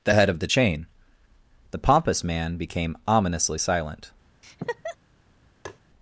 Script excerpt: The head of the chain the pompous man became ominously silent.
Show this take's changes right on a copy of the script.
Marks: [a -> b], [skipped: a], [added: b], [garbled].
The head of the chain the pompous man became ominously silent.